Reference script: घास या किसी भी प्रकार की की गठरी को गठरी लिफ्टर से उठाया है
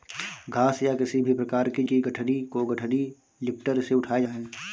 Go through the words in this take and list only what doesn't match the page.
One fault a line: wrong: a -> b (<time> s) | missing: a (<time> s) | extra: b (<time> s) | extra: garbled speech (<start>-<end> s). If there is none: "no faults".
no faults